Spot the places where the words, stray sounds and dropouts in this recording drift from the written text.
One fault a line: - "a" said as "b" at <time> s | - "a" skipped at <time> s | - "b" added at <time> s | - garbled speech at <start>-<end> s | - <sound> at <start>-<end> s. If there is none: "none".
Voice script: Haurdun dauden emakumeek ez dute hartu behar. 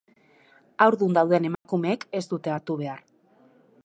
- dropout at 1.5-1.7 s